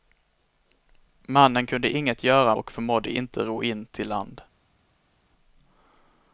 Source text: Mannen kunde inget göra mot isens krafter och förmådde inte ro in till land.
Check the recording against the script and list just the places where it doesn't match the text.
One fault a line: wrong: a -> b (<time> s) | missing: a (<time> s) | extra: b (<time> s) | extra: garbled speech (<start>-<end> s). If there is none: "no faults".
missing: mot isens krafter (2.5 s)